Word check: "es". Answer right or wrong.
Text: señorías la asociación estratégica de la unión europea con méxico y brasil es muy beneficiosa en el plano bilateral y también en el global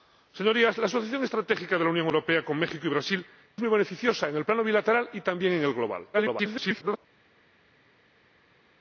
wrong